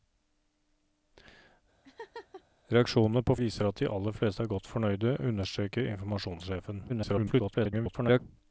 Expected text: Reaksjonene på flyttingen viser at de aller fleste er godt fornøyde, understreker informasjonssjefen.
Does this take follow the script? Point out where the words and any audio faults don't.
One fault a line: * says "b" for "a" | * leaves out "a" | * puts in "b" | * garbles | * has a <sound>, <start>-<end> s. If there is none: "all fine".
* has a laugh, 1.8-2.4 s
* leaves out "flyttingen"
* garbles